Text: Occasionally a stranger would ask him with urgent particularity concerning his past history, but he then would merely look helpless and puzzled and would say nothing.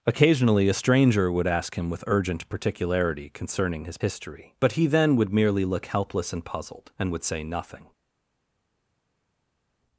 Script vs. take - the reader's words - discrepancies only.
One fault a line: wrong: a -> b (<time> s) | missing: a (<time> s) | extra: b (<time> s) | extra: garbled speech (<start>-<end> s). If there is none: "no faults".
missing: past (4.0 s)